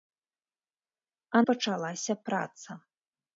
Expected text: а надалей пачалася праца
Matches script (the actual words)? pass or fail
fail